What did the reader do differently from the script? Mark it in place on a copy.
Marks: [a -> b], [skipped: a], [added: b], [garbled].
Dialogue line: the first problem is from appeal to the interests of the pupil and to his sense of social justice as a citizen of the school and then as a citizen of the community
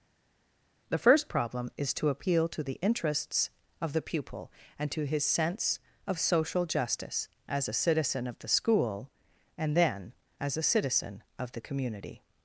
the first problem is [from -> to] appeal to the interests of the pupil and to his sense of social justice as a citizen of the school and then as a citizen of the community